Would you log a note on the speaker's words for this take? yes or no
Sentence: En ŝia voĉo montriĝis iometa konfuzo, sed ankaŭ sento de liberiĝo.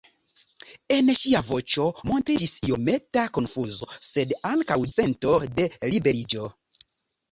no